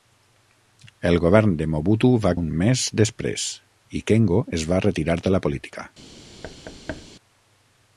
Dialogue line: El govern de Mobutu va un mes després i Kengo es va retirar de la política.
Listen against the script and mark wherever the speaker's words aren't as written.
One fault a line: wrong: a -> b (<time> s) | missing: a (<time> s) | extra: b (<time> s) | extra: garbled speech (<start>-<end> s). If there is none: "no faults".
no faults